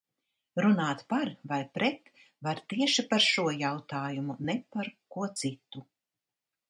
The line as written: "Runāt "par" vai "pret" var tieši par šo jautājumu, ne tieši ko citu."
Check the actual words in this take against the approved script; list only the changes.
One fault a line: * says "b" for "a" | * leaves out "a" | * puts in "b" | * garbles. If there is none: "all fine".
* says "par" for "tieši"